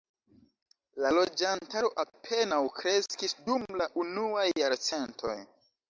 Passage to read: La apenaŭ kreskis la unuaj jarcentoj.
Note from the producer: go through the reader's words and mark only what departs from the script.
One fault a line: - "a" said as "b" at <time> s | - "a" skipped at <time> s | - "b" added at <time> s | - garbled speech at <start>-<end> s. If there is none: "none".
- "loĝantaro" added at 1.2 s
- "dum" added at 3.5 s